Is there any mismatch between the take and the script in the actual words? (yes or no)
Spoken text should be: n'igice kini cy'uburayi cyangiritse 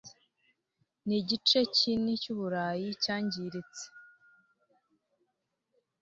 no